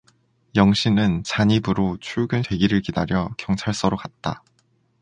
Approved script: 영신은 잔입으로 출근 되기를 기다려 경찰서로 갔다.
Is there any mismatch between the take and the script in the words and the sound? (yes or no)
no